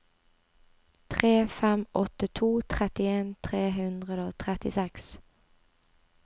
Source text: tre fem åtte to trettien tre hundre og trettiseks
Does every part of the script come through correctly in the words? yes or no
yes